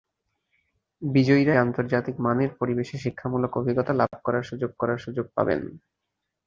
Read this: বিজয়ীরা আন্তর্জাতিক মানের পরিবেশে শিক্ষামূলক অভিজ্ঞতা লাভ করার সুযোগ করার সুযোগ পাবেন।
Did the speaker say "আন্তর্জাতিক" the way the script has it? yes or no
yes